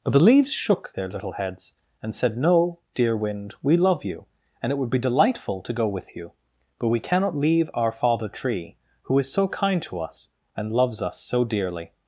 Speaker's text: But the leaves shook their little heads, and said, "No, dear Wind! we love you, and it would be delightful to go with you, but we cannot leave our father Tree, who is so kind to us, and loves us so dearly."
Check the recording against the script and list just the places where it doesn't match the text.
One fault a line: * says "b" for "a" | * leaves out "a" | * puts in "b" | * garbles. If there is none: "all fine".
all fine